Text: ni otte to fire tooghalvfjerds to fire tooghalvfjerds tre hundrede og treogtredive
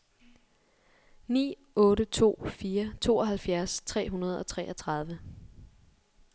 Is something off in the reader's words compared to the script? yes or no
yes